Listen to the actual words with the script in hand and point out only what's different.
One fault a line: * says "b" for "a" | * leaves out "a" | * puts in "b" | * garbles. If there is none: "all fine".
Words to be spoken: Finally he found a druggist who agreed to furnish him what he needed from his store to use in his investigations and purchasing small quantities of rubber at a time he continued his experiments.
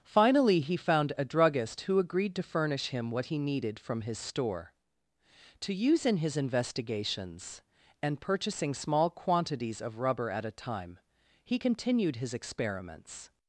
all fine